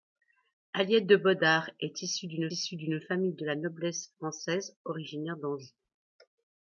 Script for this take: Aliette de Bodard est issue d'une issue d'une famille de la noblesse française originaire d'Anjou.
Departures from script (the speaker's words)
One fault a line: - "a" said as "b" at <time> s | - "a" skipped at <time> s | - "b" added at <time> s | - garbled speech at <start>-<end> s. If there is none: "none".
none